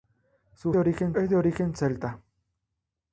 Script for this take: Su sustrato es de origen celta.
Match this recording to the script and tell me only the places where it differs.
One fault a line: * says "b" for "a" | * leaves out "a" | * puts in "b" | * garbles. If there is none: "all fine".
* says "origen" for "sustrato"